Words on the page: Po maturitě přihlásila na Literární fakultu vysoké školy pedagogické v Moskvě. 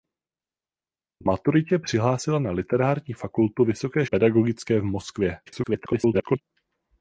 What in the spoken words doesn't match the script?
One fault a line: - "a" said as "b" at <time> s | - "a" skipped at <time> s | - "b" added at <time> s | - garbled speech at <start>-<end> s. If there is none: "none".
- "školy" skipped at 4.0 s
- garbled speech at 5.5-6.4 s